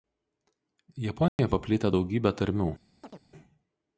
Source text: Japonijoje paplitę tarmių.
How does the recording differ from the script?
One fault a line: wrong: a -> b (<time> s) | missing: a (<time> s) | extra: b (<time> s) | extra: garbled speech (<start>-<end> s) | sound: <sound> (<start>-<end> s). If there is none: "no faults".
sound: dropout (1.3-1.4 s)
extra: daugybė (2.0 s)
sound: chirp (3.0-3.2 s)